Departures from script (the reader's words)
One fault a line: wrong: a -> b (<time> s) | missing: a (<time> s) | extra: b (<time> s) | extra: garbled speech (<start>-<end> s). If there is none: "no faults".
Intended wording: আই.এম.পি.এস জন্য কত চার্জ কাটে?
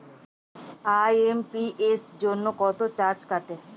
no faults